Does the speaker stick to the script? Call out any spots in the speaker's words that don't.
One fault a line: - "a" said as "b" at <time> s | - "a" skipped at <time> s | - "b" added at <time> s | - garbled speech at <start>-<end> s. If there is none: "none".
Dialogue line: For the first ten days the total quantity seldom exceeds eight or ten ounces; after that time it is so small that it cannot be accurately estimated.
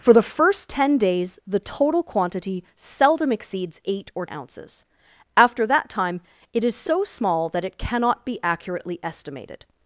- "ten" skipped at 4.2 s